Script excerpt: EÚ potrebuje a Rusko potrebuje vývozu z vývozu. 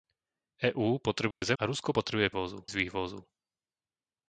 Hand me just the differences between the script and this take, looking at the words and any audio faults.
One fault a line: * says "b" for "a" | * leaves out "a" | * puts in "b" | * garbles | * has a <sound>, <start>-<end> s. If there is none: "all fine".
* has a dropout, 1.3-1.4 s